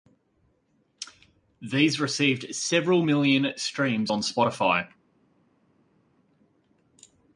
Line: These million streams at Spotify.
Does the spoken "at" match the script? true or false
false